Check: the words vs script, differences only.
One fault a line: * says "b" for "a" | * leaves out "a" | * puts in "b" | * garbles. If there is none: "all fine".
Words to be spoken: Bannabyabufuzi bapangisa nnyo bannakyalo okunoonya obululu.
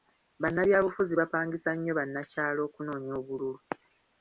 all fine